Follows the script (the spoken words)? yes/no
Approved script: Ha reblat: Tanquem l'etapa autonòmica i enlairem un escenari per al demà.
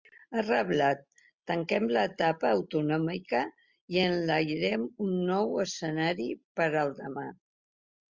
no